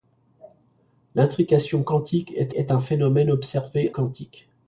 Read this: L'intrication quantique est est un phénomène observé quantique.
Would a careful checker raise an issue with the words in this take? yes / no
no